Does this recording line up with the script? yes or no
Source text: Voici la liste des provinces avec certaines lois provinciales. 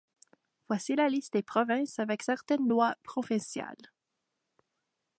yes